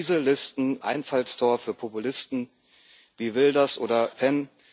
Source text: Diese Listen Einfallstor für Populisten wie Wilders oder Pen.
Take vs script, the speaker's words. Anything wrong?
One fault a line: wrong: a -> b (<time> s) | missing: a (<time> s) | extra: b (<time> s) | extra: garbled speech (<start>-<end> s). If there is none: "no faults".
no faults